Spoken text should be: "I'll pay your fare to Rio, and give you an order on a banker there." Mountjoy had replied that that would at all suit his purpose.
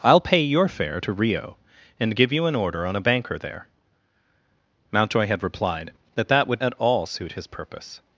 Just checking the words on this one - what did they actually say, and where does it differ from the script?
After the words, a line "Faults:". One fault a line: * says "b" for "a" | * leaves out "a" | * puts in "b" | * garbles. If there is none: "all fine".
"I'll pay your fare to Rio, and give you an order on a banker there." Mountjoy had replied that that would at all suit his purpose.
Faults:
all fine